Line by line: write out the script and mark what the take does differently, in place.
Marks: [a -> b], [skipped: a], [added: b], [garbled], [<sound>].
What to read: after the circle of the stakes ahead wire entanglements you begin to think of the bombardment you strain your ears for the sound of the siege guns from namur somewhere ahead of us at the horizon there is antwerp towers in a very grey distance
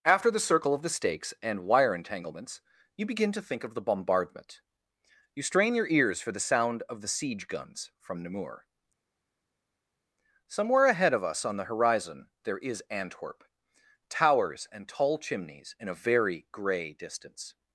after the circle of the stakes [ahead -> and] wire entanglements you begin to think of the bombardment you strain your ears for the sound of the siege guns from namur somewhere ahead of us [at -> on] the horizon there is antwerp towers [added: and tall chimneys] in a very grey distance